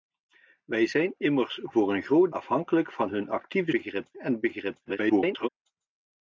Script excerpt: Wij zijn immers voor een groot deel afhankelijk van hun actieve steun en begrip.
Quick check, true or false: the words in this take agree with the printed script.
false